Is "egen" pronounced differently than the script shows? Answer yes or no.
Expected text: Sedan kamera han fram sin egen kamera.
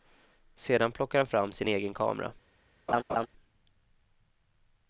no